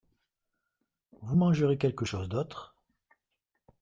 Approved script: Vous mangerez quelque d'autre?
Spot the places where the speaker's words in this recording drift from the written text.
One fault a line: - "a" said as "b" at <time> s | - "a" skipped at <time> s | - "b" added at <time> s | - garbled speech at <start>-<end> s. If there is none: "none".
- "chose" added at 2.0 s